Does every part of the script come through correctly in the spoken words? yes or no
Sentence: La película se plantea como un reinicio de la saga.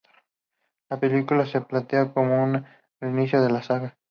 yes